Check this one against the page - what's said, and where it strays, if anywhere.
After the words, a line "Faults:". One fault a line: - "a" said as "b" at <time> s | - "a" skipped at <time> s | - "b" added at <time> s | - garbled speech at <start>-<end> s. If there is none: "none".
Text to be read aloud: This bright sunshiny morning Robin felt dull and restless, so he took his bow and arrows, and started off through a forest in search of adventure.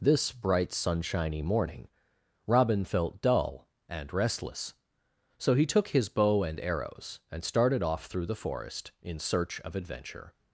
This bright sunshiny morning Robin felt dull and restless, so he took his bow and arrows, and started off through the forest in search of adventure.
Faults:
- "a" said as "the" at 8.2 s